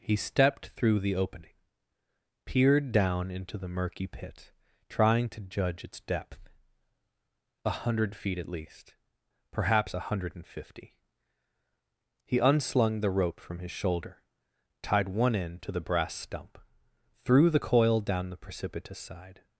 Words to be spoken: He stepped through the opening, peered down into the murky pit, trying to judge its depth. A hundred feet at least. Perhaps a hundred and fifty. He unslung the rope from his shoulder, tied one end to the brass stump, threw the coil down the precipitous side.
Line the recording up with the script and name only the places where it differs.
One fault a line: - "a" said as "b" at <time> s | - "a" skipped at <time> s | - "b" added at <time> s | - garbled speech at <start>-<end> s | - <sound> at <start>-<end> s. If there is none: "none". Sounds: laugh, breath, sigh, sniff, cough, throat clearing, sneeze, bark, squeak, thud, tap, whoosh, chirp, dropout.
none